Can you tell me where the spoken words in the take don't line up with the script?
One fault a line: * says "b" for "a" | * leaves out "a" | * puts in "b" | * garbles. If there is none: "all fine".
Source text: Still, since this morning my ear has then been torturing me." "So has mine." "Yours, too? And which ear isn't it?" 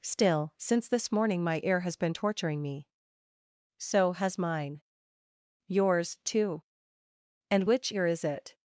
* leaves out "then"
* says "is" for "isn't"